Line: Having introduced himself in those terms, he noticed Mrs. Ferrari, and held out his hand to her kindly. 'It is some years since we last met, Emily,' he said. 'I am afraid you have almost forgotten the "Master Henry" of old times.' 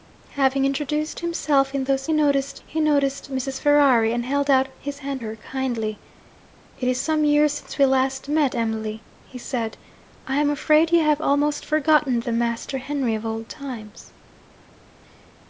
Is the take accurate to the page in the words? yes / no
no